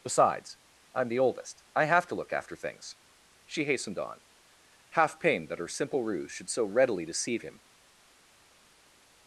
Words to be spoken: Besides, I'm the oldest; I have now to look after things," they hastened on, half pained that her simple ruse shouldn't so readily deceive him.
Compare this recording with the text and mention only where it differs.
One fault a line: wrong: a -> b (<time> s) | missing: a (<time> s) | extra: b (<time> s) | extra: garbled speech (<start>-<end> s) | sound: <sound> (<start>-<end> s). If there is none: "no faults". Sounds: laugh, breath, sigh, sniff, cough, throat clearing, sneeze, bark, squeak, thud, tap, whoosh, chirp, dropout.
missing: now (2.1 s)
wrong: they -> she (3.4 s)
wrong: shouldn't -> should (6.3 s)